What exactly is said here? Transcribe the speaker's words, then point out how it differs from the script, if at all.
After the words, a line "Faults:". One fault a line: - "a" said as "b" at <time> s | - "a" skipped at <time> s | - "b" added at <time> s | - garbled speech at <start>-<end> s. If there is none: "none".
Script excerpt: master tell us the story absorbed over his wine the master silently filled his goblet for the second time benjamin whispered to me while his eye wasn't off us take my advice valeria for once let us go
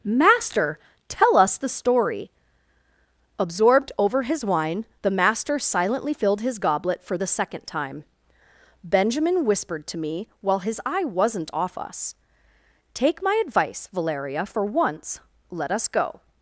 master tell us the story absorbed over his wine the master silently filled his goblet for the second time benjamin whispered to me while his eye wasn't off us take my advice valeria for once let us go
Faults:
none